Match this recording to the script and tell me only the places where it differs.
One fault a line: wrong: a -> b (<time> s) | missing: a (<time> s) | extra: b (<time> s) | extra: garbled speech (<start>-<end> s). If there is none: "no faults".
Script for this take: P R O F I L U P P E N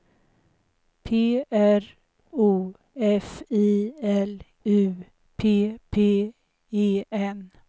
no faults